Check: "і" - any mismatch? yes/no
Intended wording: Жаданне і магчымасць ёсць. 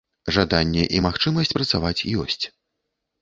no